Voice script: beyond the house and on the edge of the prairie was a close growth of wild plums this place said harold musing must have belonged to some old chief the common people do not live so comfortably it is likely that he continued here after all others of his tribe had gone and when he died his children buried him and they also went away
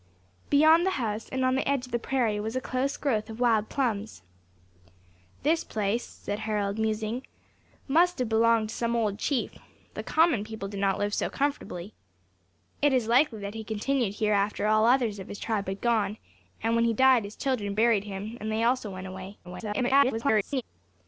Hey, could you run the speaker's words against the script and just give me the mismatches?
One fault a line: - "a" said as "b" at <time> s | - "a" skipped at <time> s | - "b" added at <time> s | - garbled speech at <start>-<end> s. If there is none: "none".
- garbled speech at 19.4-20.6 s